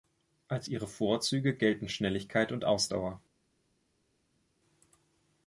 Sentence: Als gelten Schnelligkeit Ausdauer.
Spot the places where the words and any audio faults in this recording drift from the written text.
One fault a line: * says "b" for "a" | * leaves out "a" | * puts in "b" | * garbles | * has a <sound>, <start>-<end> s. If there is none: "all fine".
* puts in "ihre Vorzüge"
* puts in "und"